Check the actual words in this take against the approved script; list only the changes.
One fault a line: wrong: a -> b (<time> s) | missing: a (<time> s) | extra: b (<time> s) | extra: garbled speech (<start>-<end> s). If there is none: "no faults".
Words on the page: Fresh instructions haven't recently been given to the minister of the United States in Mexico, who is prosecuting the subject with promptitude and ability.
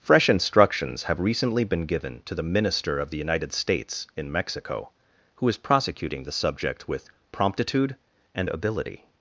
wrong: haven't -> have (1.0 s)